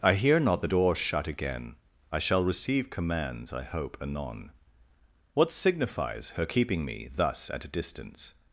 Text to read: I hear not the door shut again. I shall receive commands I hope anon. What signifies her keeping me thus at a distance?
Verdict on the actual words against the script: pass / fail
pass